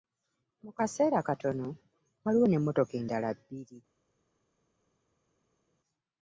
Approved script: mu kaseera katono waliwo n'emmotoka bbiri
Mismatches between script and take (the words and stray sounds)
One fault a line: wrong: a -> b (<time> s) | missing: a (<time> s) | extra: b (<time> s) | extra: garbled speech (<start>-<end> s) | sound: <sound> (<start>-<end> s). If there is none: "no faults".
extra: endala (3.0 s)